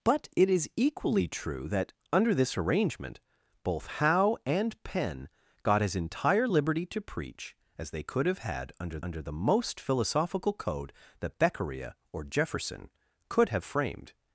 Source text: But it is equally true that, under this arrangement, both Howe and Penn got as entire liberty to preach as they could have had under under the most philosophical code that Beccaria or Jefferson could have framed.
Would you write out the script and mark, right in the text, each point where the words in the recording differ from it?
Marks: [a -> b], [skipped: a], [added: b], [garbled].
But it is equally true that, under this arrangement, both Howe and Penn got as entire liberty to preach as they could have had under under the most philosophical code that Beccaria or Jefferson could have framed.